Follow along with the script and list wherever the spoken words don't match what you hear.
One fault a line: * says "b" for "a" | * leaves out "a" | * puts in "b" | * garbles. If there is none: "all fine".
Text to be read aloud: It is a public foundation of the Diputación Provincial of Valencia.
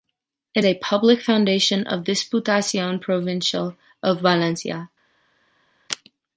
* leaves out "is"
* leaves out "the"